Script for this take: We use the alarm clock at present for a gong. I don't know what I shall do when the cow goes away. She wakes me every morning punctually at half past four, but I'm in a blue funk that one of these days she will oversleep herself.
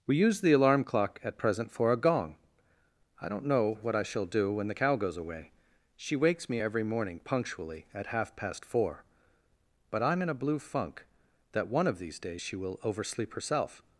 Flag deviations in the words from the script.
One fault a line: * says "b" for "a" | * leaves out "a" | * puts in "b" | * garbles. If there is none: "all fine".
all fine